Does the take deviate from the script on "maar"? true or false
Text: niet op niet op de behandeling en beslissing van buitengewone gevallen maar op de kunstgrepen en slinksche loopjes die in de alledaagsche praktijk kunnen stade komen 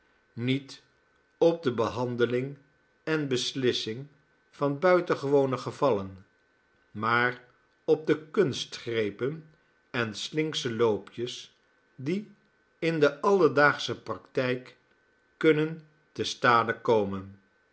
false